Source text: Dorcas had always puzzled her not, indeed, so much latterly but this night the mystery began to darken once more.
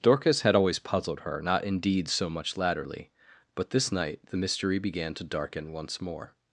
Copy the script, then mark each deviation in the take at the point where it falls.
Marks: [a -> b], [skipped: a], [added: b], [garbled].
Dorcas had always puzzled her not, indeed, so much latterly but this night the mystery began to darken once more.